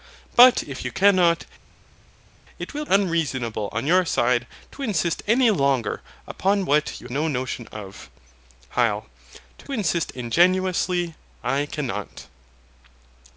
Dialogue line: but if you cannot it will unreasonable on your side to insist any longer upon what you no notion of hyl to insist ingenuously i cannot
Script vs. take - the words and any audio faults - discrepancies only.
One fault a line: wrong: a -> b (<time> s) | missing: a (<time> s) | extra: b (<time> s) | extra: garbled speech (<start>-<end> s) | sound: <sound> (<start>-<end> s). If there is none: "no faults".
no faults